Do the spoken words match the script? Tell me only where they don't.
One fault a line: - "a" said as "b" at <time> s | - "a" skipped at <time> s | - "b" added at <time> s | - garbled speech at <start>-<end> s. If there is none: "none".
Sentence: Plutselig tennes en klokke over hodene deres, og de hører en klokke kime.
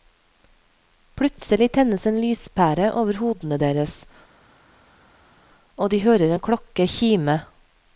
- "klokke" said as "lyspære" at 2.2 s